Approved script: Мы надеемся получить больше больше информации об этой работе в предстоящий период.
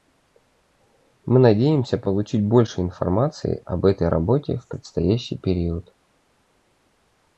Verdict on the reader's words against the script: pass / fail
fail